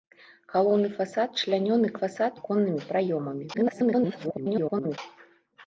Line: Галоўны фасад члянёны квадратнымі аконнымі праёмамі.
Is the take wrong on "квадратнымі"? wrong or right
wrong